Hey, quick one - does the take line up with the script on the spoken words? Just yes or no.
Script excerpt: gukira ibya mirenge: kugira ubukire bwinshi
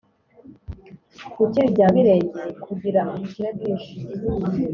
yes